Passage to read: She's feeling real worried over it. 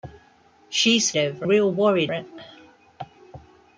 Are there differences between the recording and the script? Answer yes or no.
yes